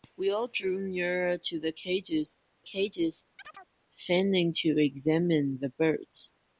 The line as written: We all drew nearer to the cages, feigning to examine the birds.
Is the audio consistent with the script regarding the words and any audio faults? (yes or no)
no